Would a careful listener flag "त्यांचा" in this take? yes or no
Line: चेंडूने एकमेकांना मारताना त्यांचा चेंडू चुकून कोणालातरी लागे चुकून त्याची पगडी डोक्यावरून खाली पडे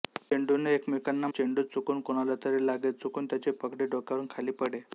yes